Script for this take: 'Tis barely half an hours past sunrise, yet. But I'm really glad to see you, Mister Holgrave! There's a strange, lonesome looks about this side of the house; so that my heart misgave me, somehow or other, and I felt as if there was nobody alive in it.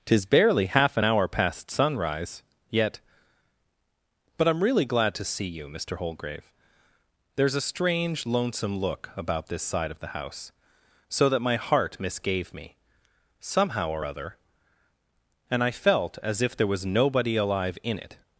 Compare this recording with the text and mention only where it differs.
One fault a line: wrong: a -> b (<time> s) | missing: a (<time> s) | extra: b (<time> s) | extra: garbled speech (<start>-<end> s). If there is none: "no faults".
wrong: hours -> hour (1.0 s)
wrong: looks -> look (8.8 s)